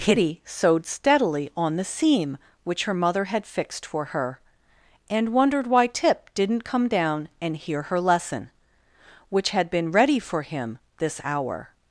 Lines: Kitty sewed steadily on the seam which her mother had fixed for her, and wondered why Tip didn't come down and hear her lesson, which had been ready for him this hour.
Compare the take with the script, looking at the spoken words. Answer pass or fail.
pass